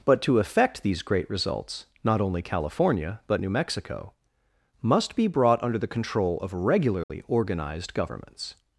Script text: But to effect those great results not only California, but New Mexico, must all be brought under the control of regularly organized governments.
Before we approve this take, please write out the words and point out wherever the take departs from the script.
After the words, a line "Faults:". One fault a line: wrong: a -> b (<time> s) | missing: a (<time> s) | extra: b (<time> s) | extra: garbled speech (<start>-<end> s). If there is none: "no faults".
But to effect these great results not only California, but New Mexico, must be brought under the control of regularly organized governments.
Faults:
wrong: those -> these (0.8 s)
missing: all (5.2 s)